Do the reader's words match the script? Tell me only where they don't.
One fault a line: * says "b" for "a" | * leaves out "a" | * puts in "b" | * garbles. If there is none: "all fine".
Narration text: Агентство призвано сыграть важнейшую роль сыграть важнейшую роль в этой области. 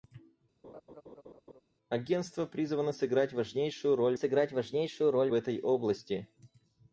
all fine